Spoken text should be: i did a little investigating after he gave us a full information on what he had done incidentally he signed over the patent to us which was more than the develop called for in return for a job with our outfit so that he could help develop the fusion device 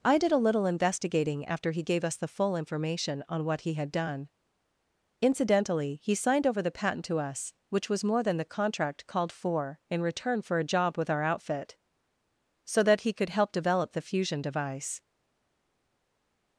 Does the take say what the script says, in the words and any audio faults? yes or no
no